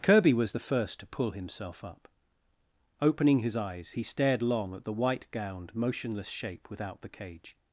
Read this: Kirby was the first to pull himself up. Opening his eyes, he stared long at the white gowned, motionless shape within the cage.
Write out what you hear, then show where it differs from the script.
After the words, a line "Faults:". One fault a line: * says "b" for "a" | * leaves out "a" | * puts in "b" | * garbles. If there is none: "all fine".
Kirby was the first to pull himself up. Opening his eyes, he stared long at the white gowned, motionless shape without the cage.
Faults:
* says "without" for "within"